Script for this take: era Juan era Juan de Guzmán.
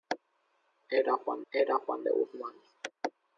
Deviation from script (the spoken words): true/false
false